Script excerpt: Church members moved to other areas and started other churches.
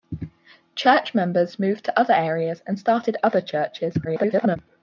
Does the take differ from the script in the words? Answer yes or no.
yes